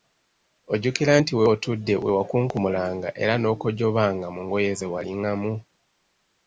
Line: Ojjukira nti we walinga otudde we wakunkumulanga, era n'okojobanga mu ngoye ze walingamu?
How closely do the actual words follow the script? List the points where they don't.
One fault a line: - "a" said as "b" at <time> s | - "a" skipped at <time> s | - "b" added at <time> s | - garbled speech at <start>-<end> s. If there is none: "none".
- "walinga" skipped at 1.4 s